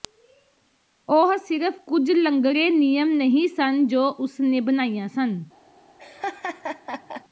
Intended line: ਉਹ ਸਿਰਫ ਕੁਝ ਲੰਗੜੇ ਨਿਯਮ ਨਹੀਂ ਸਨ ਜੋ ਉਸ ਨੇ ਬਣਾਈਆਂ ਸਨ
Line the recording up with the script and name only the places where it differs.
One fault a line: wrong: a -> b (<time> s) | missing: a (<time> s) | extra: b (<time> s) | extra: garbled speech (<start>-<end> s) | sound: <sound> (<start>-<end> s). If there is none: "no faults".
sound: laugh (6.0-7.2 s)